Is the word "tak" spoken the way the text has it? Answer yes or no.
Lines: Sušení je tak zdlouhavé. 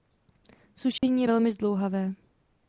no